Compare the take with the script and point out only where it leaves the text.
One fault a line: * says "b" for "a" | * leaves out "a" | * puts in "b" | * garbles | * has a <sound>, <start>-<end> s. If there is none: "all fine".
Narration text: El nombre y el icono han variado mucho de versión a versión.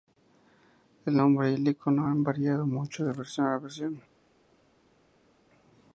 all fine